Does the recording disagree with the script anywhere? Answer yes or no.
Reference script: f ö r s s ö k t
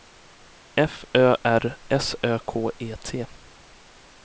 yes